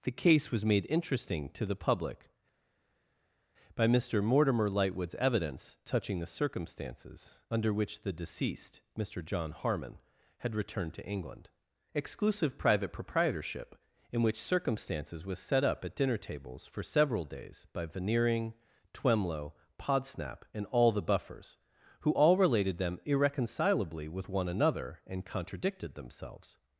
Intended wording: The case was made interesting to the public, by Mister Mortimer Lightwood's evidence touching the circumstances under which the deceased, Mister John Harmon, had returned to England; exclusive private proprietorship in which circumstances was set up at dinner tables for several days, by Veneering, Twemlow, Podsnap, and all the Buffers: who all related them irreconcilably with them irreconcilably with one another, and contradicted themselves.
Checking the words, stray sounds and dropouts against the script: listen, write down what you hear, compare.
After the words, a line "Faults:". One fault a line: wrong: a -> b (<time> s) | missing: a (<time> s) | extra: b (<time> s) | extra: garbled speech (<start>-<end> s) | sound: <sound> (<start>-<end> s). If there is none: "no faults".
The case was made interesting to the public, by Mister Mortimer Lightwood's evidence touching the circumstances under which the deceased, Mister John Harmon, had returned to England; exclusive private proprietorship in which circumstances was set up at dinner tables for several days, by Veneering, Twemlow, Podsnap, and all the Buffers: who all related them irreconcilably with one another, and contradicted themselves.
Faults:
missing: them irreconcilably with (24.3 s)